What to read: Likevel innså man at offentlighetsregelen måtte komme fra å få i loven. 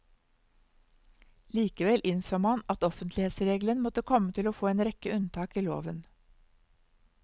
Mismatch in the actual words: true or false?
true